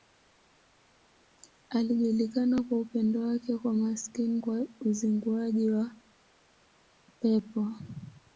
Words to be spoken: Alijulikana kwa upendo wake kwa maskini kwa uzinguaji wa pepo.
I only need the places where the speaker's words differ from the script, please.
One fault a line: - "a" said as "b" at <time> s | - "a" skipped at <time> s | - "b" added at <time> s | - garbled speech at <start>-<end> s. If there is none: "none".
none